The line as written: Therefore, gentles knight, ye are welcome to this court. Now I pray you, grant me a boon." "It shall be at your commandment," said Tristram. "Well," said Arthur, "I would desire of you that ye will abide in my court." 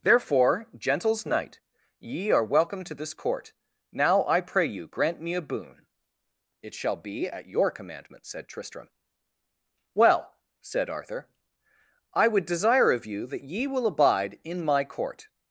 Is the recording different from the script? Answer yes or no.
no